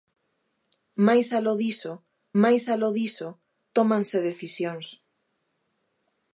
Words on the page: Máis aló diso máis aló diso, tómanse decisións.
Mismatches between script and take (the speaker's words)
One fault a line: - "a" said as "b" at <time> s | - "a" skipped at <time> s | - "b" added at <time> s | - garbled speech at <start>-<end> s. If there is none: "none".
none